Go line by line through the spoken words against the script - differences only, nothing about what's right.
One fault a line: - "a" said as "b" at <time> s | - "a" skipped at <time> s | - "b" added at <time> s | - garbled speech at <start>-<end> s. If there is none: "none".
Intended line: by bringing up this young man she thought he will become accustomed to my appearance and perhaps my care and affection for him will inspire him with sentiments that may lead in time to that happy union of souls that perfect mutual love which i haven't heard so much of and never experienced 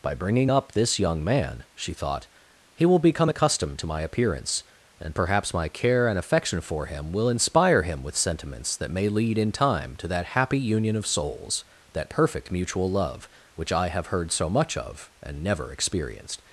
- "haven't" said as "have" at 13.9 s